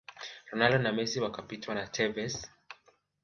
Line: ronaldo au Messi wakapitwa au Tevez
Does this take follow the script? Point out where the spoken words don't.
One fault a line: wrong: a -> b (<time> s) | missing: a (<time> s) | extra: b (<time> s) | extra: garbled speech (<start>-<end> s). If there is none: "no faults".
wrong: au -> na (0.8 s)
wrong: au -> na (1.7 s)